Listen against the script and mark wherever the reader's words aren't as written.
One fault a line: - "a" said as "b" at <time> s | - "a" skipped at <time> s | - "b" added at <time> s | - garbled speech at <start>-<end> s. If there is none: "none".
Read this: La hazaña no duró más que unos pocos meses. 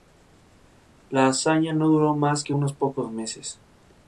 none